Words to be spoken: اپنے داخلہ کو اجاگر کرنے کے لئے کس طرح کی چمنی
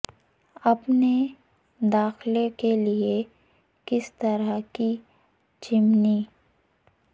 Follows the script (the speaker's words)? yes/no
no